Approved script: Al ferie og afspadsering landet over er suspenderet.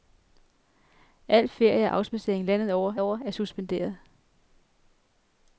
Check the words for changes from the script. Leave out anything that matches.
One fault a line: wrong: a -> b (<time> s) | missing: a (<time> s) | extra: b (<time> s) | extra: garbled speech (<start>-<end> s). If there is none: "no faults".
extra: over (3.0 s)